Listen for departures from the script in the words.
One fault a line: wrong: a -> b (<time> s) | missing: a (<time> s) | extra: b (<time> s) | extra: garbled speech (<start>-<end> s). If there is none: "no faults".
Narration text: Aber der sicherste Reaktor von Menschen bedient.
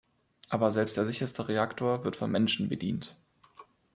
extra: selbst (0.7 s)
extra: wird (2.0 s)